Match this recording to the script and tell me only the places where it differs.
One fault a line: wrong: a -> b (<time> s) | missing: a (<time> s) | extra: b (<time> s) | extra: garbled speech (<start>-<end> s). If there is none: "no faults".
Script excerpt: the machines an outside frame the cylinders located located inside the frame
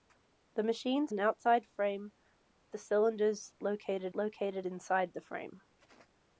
no faults